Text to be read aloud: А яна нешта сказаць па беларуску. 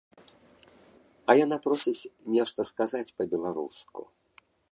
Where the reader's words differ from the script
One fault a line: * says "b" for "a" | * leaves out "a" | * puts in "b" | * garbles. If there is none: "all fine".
* puts in "просіць"